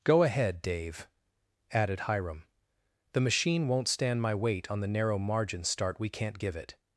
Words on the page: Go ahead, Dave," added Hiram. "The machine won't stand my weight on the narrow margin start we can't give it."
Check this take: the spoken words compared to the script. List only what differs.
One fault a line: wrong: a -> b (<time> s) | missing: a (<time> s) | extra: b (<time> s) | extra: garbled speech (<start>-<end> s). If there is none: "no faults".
no faults